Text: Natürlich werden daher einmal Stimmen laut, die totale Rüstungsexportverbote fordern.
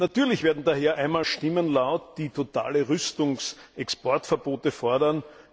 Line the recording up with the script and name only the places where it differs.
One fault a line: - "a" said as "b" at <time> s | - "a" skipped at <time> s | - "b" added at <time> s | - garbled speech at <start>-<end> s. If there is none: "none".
none